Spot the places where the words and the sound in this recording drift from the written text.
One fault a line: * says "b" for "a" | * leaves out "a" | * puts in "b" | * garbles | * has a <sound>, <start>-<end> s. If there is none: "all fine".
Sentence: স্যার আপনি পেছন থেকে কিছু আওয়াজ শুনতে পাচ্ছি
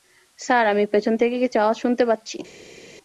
* says "আমি" for "আপনি"